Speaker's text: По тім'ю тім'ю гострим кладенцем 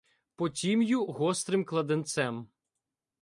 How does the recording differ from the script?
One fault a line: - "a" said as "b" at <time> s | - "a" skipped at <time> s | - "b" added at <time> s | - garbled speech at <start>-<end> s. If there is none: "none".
- "тім'ю" skipped at 1.1 s